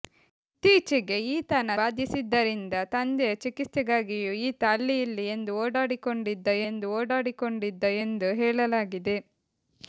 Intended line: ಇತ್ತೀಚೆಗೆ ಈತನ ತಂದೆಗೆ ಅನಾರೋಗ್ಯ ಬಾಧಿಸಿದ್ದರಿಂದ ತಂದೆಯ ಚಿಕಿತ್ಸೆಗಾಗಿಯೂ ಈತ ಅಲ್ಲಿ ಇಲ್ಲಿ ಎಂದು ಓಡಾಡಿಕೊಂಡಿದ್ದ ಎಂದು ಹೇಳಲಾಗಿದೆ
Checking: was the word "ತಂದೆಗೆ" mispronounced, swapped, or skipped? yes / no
yes